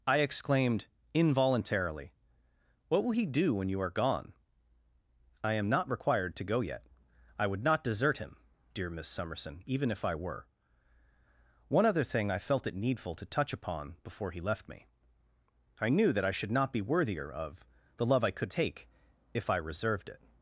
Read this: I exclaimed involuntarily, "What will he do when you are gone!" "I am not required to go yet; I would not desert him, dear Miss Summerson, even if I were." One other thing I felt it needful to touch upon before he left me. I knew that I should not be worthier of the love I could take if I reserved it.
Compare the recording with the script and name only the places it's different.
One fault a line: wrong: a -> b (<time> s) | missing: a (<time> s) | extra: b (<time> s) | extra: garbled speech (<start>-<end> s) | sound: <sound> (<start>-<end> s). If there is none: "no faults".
no faults